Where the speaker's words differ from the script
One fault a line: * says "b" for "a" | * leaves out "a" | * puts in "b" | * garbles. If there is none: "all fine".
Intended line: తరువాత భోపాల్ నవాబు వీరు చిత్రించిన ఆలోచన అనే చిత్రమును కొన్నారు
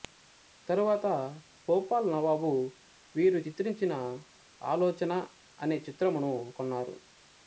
all fine